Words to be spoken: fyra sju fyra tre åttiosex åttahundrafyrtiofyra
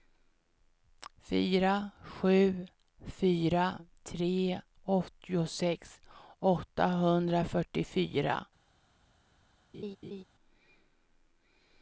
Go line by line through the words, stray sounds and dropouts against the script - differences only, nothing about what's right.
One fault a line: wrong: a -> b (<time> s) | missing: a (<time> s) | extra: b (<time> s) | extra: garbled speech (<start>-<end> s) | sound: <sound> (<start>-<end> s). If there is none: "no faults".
sound: laugh (9.7-10.2 s)